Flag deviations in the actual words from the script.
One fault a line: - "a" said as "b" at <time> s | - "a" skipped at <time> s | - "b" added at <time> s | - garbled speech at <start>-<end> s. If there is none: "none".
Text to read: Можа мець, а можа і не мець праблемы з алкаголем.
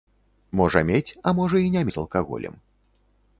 - "мець праблемы" skipped at 1.8 s